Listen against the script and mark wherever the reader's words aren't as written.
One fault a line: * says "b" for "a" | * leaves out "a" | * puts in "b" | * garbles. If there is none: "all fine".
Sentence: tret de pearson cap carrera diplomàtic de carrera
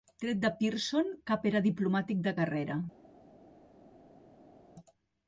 * says "era" for "carrera"